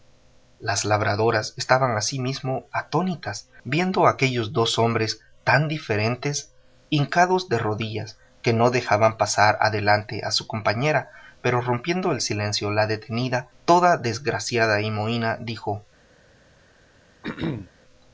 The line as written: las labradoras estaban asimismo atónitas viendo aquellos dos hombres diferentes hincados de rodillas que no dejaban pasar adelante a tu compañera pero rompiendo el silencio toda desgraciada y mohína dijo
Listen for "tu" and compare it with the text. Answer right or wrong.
wrong